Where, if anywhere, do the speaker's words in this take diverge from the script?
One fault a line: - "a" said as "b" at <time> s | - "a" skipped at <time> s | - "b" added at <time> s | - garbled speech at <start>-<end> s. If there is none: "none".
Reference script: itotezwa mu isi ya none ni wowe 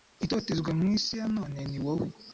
none